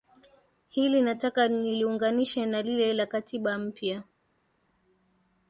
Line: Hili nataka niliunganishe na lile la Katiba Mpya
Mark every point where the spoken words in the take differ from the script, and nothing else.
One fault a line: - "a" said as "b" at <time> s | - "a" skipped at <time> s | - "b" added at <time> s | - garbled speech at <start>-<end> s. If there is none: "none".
none